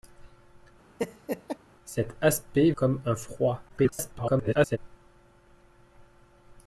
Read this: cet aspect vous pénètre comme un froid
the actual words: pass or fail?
fail